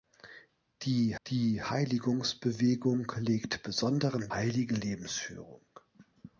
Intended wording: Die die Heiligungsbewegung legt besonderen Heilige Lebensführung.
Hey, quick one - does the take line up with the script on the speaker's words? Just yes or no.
yes